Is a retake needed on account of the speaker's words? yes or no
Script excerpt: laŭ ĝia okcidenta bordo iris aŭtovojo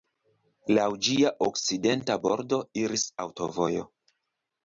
no